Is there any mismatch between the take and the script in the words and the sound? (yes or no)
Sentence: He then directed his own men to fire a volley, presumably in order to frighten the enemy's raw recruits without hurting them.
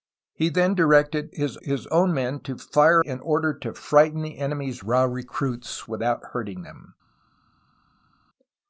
yes